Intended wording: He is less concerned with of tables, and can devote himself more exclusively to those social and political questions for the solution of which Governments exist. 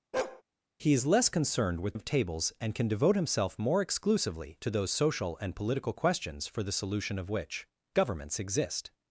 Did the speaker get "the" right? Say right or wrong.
right